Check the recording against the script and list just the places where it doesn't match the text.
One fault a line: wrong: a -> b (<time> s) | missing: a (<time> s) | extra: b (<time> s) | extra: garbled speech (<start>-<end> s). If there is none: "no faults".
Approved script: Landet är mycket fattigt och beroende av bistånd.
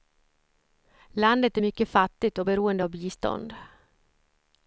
no faults